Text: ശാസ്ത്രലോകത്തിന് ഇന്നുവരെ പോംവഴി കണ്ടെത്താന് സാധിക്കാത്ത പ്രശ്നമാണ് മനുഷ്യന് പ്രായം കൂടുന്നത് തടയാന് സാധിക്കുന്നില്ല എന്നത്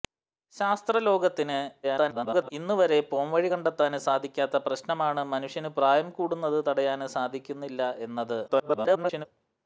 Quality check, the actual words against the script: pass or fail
fail